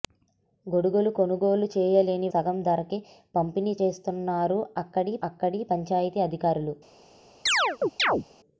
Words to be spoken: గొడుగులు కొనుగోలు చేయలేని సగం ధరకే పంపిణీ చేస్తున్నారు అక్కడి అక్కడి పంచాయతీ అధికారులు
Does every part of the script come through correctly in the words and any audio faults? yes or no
no